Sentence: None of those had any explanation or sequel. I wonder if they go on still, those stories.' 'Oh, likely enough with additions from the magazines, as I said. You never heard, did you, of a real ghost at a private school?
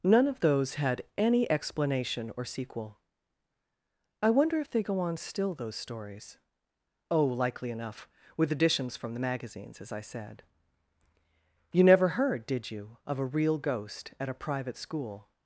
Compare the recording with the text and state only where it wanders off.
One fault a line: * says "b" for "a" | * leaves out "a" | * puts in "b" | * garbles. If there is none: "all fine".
all fine